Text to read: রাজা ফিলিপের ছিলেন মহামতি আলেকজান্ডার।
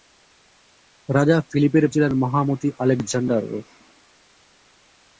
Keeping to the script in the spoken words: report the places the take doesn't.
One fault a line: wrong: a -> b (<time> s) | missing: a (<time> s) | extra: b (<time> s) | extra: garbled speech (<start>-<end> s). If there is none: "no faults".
no faults